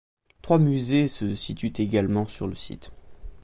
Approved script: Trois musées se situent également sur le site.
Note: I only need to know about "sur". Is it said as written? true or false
true